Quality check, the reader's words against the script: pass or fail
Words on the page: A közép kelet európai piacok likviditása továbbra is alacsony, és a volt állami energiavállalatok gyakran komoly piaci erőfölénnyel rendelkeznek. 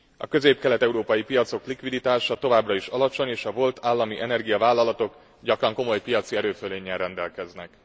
pass